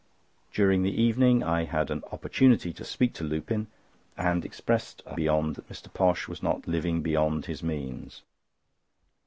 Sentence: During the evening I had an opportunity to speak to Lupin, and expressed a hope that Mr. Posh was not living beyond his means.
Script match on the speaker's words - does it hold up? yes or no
no